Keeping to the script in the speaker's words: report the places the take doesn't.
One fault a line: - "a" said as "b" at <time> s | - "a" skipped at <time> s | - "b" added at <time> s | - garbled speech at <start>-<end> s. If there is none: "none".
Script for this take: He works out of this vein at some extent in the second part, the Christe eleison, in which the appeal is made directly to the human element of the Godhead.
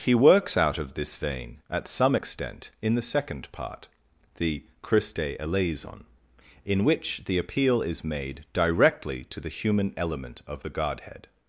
none